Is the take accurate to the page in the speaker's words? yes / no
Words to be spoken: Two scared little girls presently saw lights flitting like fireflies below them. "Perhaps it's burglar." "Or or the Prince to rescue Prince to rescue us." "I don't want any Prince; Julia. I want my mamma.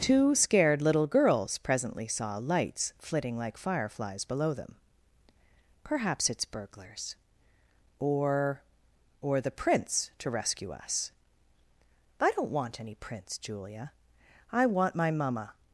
no